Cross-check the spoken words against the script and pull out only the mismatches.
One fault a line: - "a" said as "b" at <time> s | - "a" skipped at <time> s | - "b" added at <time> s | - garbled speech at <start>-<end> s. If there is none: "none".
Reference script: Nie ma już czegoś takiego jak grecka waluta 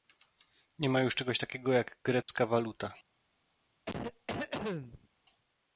none